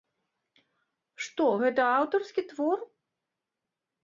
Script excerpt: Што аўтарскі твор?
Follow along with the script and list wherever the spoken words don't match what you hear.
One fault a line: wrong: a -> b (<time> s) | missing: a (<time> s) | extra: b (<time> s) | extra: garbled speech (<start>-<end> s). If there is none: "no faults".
extra: гэта (1.6 s)